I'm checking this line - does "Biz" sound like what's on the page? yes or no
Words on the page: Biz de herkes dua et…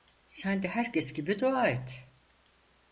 no